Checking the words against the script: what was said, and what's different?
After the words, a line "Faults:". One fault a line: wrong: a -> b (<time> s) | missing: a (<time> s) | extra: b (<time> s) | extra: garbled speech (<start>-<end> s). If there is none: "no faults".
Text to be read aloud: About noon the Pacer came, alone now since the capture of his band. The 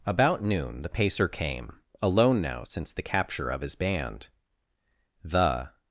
About noon the Pacer came, alone now since the capture of his band. The
Faults:
no faults